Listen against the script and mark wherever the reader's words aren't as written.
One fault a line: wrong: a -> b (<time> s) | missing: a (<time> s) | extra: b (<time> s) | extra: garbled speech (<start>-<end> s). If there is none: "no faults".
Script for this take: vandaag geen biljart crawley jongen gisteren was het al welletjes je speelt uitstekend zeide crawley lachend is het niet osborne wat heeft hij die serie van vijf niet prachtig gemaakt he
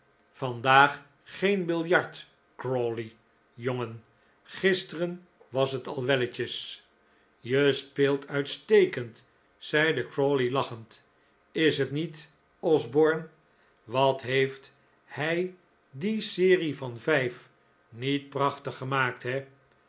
no faults